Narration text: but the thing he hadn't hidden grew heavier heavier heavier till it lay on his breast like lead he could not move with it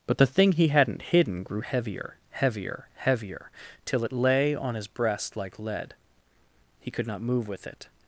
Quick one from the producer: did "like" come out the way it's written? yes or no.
yes